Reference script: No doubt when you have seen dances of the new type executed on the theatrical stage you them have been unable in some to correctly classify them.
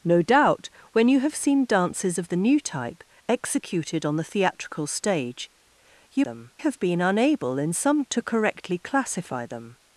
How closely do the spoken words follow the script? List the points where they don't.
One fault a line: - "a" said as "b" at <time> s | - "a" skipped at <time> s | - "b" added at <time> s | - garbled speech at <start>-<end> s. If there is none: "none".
none